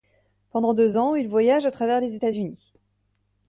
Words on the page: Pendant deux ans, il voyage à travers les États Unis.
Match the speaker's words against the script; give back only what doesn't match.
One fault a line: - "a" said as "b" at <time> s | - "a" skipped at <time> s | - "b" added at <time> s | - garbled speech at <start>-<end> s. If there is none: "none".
none